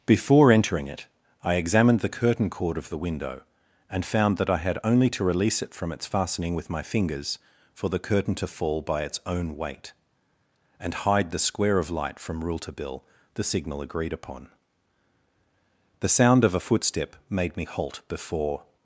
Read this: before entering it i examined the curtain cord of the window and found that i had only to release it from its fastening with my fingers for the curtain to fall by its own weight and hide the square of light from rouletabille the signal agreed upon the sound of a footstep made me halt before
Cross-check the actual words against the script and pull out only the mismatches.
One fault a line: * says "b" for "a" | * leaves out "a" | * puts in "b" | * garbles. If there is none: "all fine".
all fine